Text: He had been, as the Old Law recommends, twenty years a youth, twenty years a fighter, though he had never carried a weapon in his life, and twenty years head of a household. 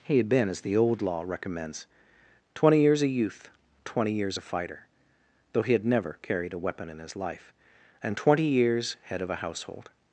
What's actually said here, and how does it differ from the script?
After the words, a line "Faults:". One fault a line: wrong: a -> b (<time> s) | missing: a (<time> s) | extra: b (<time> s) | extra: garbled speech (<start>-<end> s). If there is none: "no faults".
He had been, as the Old Law recommends, twenty years a youth, twenty years a fighter, though he had never carried a weapon in his life, and twenty years head of a household.
Faults:
no faults